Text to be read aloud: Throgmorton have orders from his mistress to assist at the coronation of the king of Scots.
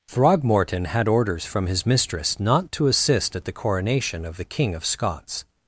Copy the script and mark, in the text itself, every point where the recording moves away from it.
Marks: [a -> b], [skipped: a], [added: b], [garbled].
Throgmorton [have -> had] orders from his mistress [added: not] to assist at the coronation of the king of Scots.